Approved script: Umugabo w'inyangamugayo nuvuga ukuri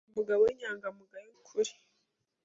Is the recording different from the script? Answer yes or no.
yes